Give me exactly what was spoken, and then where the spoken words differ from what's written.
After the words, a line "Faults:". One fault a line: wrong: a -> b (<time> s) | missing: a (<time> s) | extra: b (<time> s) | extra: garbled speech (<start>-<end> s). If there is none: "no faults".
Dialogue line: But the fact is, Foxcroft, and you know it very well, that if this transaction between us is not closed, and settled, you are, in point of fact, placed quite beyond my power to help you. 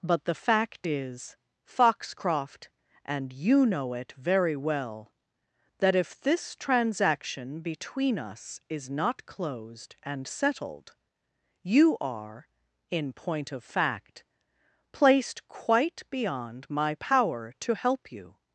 But the fact is, Foxcroft, and you know it very well, that if this transaction between us is not closed, and settled, you are, in point of fact, placed quite beyond my power to help you.
Faults:
no faults